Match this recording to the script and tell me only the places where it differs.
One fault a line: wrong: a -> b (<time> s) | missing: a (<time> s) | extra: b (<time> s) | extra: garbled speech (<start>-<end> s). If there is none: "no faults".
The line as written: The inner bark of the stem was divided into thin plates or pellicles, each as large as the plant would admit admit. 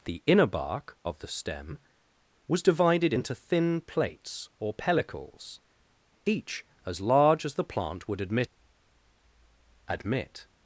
no faults